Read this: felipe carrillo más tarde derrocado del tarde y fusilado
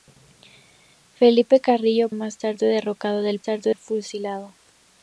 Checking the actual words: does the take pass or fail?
pass